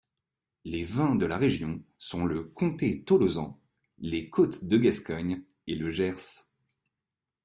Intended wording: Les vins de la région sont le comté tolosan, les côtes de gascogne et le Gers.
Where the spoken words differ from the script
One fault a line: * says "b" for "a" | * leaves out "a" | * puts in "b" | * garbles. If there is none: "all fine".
all fine